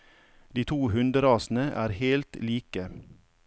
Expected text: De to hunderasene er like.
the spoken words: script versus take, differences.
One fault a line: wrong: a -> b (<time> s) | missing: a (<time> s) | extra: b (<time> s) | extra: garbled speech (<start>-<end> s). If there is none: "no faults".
extra: helt (2.0 s)